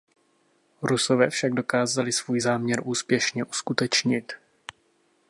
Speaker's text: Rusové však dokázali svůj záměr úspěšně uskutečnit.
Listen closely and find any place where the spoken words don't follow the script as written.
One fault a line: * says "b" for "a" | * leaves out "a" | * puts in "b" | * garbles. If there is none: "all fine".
all fine